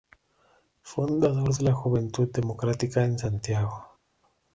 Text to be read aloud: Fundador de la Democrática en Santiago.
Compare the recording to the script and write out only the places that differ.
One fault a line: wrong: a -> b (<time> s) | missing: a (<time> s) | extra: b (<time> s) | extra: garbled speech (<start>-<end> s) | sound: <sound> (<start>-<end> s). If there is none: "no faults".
extra: Juventud (1.7 s)